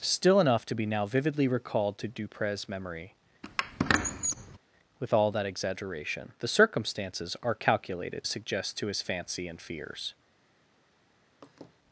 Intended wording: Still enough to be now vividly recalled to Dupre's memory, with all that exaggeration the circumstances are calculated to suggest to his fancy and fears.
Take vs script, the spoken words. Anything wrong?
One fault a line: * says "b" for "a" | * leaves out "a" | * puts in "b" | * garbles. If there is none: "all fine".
* leaves out "to"